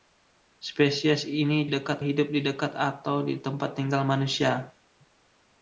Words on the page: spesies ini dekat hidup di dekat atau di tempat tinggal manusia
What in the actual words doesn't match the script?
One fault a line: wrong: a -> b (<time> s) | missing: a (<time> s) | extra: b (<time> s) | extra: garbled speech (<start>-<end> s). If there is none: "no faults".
no faults